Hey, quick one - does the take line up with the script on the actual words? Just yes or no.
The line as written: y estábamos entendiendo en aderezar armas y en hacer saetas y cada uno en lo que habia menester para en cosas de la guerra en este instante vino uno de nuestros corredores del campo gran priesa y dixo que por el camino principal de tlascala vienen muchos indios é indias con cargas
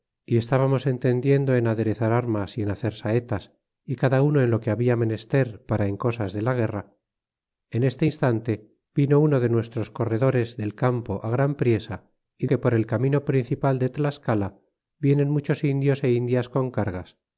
no